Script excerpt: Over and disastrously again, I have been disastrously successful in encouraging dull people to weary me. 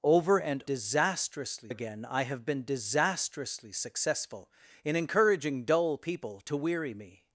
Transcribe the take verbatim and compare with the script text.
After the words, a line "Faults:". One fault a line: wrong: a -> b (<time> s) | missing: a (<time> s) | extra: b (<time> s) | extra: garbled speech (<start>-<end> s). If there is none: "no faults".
Over and disastrously again, I have been disastrously successful in encouraging dull people to weary me.
Faults:
no faults